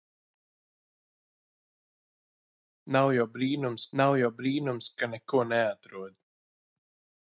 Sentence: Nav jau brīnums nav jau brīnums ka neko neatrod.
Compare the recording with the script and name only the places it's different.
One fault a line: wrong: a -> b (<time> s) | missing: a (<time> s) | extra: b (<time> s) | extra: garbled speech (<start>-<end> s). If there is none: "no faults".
no faults